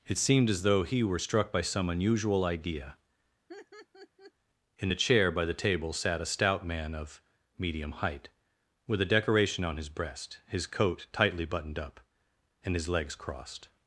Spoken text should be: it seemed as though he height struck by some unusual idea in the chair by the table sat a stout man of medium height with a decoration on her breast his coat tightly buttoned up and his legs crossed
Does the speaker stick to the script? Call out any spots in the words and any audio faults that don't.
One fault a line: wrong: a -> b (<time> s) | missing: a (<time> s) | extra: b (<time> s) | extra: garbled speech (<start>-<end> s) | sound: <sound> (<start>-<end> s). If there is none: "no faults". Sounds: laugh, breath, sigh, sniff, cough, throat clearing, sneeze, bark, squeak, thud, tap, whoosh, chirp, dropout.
wrong: height -> were (1.0 s)
sound: laugh (3.5-4.3 s)
wrong: her -> his (9.8 s)